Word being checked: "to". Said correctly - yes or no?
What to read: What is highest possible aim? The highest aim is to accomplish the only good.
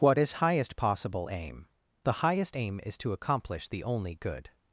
yes